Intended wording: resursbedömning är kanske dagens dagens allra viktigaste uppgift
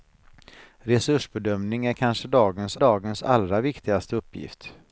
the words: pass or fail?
pass